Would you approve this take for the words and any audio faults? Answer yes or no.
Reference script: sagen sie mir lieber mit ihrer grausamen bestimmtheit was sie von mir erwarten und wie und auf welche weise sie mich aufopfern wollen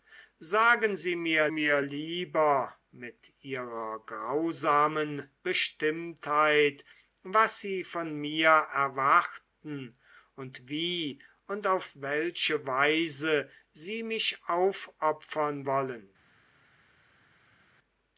no